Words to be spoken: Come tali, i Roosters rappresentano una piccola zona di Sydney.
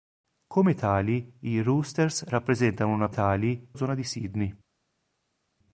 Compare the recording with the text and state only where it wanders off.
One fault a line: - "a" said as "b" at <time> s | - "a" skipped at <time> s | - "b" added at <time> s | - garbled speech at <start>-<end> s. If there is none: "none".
- "piccola" said as "tali" at 3.1 s